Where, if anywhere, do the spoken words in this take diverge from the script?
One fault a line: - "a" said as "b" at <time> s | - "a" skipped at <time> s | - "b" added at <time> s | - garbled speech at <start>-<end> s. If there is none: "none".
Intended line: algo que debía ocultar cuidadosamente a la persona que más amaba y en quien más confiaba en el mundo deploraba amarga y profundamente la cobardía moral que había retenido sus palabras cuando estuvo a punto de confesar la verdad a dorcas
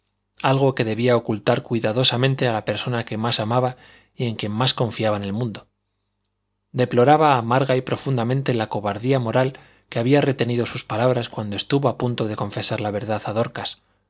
none